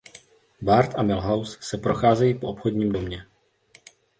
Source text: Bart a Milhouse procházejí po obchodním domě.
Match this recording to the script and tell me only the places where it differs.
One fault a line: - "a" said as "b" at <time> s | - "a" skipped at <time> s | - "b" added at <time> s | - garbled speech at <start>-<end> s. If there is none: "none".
- "se" added at 1.6 s